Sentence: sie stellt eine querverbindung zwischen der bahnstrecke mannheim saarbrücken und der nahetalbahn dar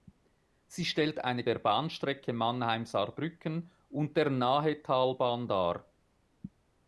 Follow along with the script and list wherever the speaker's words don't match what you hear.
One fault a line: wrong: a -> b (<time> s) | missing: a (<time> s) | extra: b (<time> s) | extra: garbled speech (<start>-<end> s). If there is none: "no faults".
missing: querverbindung zwischen (1.4 s)